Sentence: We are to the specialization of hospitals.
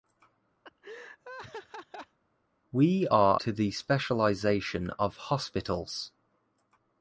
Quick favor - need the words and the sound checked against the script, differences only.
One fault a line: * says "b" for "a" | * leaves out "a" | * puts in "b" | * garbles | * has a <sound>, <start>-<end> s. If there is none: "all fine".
* has a laugh, 0.6-2.2 s